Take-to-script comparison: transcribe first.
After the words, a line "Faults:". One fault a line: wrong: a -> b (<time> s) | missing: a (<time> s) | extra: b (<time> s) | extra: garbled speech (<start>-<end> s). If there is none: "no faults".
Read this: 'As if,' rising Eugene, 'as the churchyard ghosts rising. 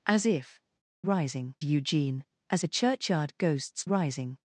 'As if,' rising Eugene, 'as the churchyard ghosts rising.
Faults:
no faults